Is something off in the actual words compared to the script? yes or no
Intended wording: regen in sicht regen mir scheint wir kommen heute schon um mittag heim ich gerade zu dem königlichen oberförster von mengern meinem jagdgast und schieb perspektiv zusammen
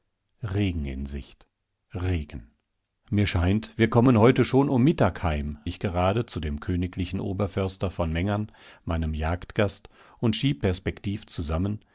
no